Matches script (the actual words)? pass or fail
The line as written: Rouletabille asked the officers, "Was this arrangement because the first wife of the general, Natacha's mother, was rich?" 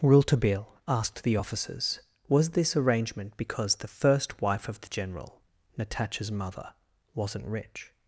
fail